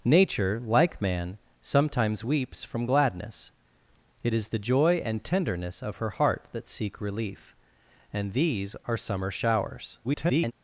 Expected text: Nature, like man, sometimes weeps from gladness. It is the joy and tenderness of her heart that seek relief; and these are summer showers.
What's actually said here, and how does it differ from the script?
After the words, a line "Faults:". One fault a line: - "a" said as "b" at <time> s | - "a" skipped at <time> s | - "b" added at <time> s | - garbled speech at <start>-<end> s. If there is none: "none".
Nature, like man, sometimes weeps from gladness. It is the joy and tenderness of her heart that seek relief; and these are summer showers. [garbled]
Faults:
- garbled speech at 10.0-10.5 s